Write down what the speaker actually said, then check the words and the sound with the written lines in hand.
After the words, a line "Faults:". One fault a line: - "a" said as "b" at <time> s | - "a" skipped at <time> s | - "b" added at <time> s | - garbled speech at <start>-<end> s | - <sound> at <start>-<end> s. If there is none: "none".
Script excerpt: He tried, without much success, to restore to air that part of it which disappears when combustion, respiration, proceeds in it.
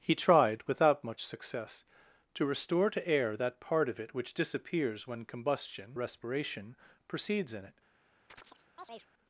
He tried, without much success, to restore to air that part of it which disappears when combustion, respiration, proceeds in it.
Faults:
- chirp at 8.3-9.1 s